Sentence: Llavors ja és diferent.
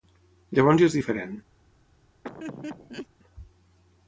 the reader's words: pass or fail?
pass